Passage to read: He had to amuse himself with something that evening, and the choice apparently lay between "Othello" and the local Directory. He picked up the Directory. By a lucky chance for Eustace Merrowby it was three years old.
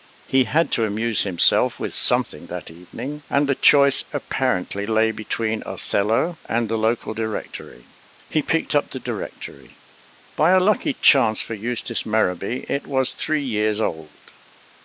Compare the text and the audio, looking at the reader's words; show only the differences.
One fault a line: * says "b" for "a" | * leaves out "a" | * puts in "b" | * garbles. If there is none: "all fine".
all fine